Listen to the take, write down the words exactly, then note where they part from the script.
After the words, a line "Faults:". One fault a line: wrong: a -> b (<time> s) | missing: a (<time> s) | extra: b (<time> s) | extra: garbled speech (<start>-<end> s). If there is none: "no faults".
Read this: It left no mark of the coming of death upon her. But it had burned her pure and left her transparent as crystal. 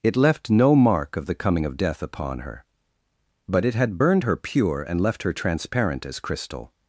It left no mark of the coming of death upon her. But it had burned her pure and left her transparent as crystal.
Faults:
no faults